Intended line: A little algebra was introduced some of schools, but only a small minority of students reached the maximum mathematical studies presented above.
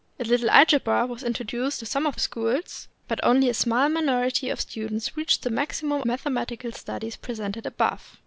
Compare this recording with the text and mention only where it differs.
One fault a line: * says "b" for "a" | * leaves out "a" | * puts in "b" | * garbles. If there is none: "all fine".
all fine